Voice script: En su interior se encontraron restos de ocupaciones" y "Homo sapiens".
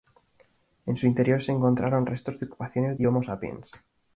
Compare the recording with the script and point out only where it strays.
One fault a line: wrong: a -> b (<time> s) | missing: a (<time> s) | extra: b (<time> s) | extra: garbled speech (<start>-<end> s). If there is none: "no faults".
no faults